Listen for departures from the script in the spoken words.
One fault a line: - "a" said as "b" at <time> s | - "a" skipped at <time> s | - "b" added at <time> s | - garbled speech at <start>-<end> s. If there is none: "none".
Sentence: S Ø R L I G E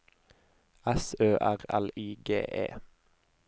none